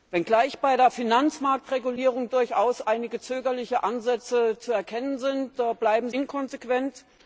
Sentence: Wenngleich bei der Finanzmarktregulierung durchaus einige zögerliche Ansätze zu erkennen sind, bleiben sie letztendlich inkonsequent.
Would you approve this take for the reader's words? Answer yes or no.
no